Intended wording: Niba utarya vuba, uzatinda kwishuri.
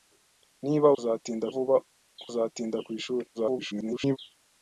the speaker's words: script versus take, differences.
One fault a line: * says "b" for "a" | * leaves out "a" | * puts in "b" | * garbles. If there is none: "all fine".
* says "uzatinda" for "utarya"
* garbles